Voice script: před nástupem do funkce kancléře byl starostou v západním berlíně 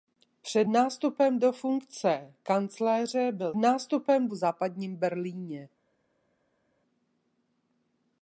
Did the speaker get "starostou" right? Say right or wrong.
wrong